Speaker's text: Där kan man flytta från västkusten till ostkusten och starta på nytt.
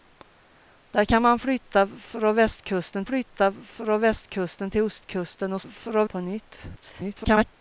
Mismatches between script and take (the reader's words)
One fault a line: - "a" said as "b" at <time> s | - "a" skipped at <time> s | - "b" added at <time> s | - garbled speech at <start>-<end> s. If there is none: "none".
- "flytta från västkusten" added at 3.0 s
- "starta" said as "från" at 5.6 s
- garbled speech at 6.8-7.4 s